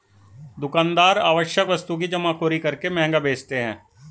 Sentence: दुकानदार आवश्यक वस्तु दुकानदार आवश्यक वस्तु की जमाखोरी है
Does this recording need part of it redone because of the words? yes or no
yes